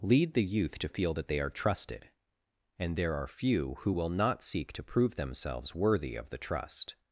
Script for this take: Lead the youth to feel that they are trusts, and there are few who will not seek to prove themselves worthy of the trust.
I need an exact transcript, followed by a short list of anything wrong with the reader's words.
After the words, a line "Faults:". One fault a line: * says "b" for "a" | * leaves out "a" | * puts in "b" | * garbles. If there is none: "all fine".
Lead the youth to feel that they are trusted, and there are few who will not seek to prove themselves worthy of the trust.
Faults:
* says "trusted" for "trusts"